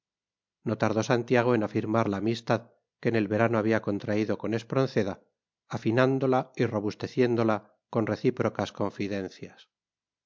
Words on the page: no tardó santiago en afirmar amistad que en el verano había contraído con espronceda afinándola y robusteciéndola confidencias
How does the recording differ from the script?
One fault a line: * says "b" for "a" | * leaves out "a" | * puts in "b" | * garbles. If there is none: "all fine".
* puts in "la"
* puts in "con recíprocas"